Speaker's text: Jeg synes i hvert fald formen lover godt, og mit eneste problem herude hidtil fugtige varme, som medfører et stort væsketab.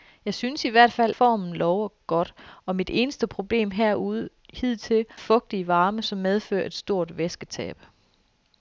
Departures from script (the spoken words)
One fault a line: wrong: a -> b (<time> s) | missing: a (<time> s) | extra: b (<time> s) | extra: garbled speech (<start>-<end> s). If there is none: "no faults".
no faults